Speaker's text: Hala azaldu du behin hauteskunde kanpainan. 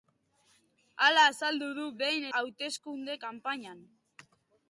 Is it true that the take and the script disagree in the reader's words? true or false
false